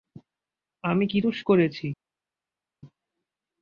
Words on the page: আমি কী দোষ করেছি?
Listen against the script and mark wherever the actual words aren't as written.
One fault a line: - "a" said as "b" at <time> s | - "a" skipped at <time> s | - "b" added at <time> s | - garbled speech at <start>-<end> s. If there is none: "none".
none